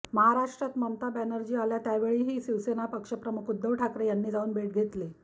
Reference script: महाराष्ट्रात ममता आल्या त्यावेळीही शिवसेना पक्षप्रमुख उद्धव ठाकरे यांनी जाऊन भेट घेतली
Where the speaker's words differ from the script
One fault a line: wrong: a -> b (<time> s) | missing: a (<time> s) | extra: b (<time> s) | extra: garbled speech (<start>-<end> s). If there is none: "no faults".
extra: बॅनर्जी (1.1 s)